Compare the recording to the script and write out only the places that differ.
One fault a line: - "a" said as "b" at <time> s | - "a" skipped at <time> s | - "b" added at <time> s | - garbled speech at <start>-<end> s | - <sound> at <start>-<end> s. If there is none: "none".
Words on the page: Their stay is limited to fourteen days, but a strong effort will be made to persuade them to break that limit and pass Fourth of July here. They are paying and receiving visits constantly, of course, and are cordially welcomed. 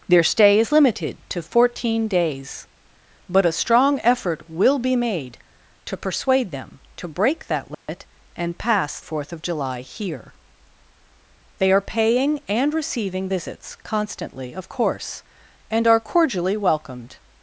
- dropout at 7.7-7.9 s